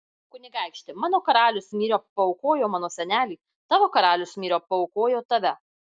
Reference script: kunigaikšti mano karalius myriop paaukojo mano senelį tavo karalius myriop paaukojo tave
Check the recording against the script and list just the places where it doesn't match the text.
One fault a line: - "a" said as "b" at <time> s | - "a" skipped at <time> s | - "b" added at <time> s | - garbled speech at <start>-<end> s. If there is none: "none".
none